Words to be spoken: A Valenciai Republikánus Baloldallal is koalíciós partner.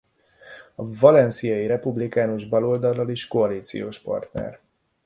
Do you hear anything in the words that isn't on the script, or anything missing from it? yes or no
no